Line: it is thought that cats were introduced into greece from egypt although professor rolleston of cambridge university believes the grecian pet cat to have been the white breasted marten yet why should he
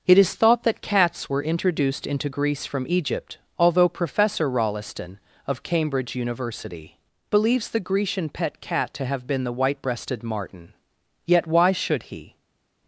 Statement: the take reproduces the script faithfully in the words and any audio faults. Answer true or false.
true